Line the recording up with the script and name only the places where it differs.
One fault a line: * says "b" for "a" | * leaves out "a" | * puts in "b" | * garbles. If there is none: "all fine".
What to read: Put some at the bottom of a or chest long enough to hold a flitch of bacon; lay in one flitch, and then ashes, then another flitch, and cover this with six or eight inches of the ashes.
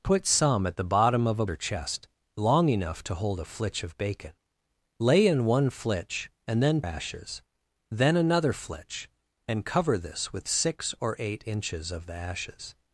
all fine